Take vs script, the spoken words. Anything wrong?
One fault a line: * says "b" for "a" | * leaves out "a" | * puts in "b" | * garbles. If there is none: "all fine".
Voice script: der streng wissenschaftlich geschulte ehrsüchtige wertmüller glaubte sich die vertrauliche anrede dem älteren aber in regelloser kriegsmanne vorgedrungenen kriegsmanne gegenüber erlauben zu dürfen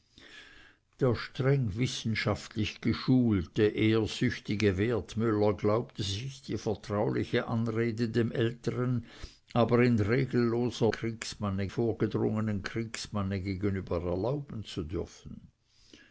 all fine